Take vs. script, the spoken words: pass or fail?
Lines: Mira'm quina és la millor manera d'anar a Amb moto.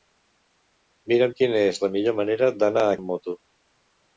pass